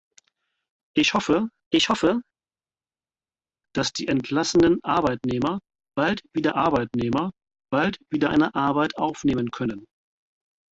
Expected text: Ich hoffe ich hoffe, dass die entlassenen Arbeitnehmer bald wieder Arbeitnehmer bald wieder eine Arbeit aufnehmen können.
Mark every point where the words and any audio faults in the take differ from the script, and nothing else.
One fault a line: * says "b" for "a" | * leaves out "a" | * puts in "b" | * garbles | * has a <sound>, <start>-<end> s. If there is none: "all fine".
all fine